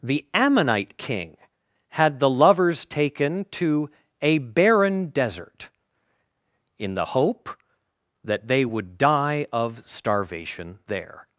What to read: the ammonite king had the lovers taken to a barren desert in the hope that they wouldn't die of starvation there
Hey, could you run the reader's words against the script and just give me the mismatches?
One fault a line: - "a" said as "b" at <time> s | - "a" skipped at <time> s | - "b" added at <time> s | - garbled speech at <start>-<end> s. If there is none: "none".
- "wouldn't" said as "would" at 8.6 s